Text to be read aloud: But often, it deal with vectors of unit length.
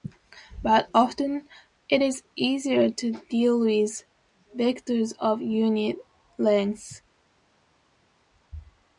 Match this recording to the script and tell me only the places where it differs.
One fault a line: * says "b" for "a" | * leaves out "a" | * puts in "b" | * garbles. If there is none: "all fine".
* puts in "is easier to"